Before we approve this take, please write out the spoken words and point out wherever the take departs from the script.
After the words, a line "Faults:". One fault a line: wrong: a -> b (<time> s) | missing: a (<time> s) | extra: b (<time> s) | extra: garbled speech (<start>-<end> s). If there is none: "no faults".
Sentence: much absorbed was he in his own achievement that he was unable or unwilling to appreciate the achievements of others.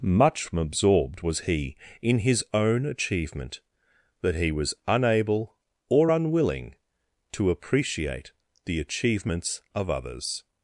much absorbed was he in his own achievement that he was unable or unwilling to appreciate the achievements of others.
Faults:
no faults